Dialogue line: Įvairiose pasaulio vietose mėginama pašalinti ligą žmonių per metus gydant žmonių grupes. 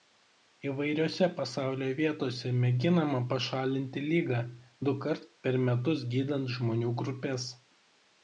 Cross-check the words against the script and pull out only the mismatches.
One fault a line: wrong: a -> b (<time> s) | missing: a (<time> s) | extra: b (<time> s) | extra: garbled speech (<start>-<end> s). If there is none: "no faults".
wrong: žmonių -> dukart (4.9 s)